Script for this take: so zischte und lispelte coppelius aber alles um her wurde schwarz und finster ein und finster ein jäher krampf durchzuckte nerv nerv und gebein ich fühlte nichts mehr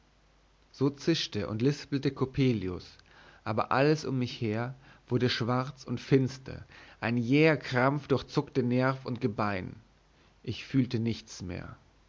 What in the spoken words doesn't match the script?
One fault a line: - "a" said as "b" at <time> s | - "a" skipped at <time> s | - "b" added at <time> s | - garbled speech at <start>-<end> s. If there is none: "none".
- "mich" added at 4.2 s
- "und finster ein" skipped at 7.2 s
- "nerv" skipped at 9.0 s